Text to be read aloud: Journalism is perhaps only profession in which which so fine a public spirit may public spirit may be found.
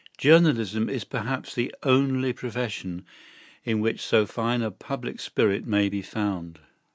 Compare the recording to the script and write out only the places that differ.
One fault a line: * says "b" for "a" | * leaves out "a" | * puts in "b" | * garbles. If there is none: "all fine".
* puts in "the"
* leaves out "which"
* leaves out "public spirit may"